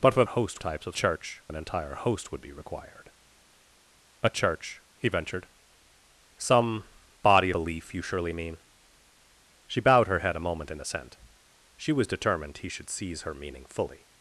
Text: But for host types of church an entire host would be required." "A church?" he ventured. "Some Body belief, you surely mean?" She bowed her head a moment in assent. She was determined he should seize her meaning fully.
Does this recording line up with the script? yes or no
yes